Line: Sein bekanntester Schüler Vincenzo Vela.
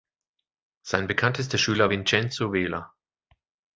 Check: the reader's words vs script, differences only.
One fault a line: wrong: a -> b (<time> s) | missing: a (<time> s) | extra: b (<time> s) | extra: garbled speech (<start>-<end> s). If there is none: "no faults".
no faults